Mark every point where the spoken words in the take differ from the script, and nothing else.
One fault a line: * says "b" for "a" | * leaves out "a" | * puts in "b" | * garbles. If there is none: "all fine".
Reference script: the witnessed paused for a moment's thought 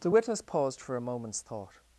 * says "witness" for "witnessed"